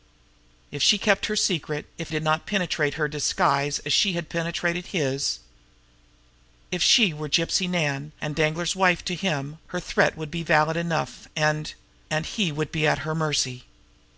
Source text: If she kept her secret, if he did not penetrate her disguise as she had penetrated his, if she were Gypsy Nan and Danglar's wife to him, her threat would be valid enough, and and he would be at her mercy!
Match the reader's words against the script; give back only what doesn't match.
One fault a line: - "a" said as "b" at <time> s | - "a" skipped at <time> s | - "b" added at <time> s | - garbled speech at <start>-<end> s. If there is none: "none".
- "he" skipped at 2.1 s